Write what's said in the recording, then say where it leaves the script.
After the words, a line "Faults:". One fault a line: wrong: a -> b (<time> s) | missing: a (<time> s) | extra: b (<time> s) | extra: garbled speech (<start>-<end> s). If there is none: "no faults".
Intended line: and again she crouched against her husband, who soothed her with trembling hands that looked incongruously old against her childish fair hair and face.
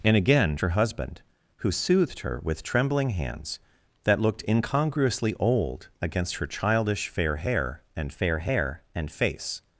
and again her husband, who soothed her with trembling hands that looked incongruously old against her childish fair hair and fair hair and face.
Faults:
missing: she crouched against (0.6 s)
extra: fair hair and (8.1 s)